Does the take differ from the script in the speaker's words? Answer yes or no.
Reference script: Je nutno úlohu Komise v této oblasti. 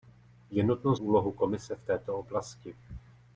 no